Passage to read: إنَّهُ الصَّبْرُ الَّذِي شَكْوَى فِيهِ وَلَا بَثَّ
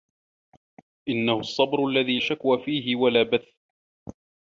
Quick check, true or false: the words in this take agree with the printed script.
true